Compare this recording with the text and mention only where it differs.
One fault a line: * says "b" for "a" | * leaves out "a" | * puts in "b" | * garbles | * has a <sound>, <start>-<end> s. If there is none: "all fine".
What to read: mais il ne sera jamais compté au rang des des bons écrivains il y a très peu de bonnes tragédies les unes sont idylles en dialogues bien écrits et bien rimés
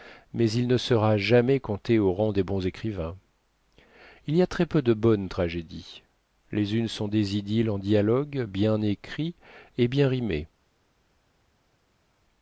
* leaves out "des"
* puts in "des"